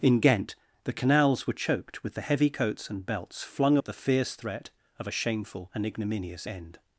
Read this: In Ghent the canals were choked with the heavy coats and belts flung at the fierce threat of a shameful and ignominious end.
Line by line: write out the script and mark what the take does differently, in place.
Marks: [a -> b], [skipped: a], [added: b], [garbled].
In Ghent the canals were choked with the heavy coats and belts flung at the fierce threat of a shameful and ignominious end.